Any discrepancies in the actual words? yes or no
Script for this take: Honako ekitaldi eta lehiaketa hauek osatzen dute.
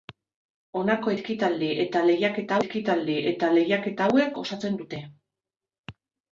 yes